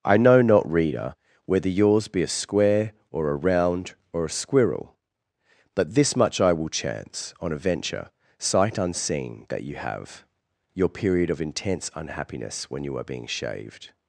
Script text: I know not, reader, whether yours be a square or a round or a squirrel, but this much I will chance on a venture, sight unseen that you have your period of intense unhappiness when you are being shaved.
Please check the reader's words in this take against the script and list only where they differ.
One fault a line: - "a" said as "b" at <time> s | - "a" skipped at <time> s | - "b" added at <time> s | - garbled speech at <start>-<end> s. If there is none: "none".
none